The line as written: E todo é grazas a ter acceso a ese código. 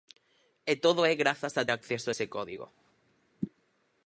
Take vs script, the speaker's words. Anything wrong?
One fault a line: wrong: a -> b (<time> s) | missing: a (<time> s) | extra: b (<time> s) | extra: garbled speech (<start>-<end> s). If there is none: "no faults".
missing: ter (1.6 s)